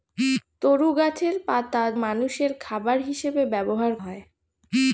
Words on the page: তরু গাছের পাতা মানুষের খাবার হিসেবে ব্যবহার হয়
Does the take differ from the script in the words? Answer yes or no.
no